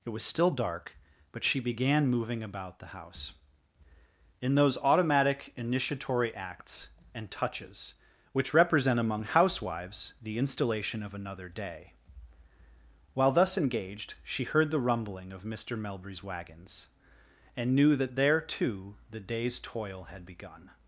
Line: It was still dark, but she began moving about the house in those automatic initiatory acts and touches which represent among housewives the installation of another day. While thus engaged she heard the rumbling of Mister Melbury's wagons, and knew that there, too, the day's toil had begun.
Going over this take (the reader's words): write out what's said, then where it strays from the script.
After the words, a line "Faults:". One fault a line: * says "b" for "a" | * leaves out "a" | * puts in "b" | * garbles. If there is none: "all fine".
It was still dark, but she began moving about the house in those automatic initiatory acts and touches which represent among housewives the installation of another day. While thus engaged she heard the rumbling of Mister Melbury's wagons, and knew that there, too, the day's toil had begun.
Faults:
all fine